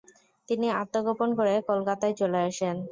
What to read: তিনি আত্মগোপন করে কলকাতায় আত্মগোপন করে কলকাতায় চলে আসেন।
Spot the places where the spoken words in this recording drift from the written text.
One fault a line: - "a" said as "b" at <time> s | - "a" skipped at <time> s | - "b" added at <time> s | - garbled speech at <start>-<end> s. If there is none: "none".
- "আত্মগোপন করে কলকাতায়" skipped at 2.1 s